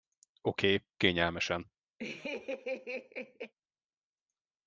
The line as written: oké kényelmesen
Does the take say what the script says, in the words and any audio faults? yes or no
no